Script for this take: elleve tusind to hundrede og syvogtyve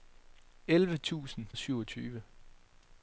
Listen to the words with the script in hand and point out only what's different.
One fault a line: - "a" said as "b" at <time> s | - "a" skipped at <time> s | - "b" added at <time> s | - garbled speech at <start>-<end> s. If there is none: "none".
- "to hundrede" skipped at 1.5 s